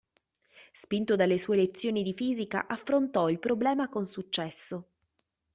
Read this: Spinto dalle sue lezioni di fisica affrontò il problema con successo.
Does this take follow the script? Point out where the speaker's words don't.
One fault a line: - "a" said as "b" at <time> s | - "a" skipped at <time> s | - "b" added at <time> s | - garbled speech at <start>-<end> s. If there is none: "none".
none